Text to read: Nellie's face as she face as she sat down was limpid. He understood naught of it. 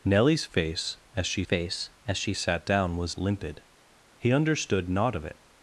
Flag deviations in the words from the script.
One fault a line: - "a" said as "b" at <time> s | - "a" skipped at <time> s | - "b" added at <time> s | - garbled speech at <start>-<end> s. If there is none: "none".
none